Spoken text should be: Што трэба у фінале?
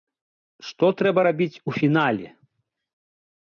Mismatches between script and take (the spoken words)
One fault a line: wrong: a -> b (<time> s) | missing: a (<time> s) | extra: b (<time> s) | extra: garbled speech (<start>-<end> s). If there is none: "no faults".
extra: рабіць (1.3 s)